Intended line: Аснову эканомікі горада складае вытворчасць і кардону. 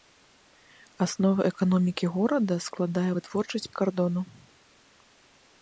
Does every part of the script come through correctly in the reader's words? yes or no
yes